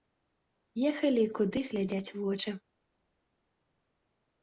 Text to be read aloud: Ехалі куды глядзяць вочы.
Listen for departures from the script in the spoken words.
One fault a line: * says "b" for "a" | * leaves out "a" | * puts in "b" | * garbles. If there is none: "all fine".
all fine